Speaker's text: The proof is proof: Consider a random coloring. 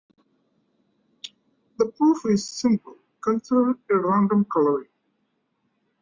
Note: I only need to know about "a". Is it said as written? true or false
true